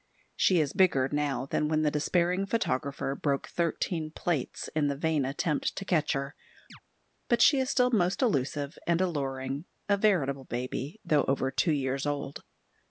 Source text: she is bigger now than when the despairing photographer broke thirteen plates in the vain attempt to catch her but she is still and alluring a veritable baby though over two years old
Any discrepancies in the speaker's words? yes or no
yes